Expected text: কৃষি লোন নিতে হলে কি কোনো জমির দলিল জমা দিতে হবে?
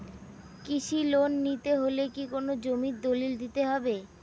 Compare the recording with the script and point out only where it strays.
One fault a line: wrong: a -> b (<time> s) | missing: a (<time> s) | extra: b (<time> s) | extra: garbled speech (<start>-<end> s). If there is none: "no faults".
missing: জমা (3.3 s)